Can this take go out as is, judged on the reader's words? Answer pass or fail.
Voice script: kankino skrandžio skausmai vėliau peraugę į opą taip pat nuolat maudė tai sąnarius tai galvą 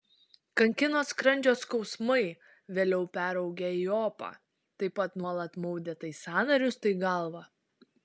pass